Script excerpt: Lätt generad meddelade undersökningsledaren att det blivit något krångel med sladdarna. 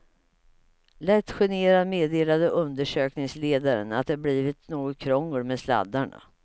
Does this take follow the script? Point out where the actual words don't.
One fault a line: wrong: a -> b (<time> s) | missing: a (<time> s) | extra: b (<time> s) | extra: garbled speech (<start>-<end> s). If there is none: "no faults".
no faults